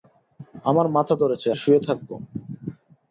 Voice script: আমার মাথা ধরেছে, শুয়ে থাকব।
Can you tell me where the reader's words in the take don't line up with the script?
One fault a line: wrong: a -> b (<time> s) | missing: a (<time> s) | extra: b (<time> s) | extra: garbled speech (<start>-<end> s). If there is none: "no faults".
no faults